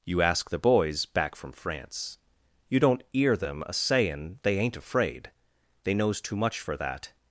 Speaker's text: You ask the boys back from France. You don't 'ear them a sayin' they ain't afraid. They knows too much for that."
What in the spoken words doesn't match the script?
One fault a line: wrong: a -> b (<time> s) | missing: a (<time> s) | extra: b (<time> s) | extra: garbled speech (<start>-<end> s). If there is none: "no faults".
no faults